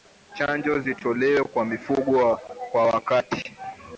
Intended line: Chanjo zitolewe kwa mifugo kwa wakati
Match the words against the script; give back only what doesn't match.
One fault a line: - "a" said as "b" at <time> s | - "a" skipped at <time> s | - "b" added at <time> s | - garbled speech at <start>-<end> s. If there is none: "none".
none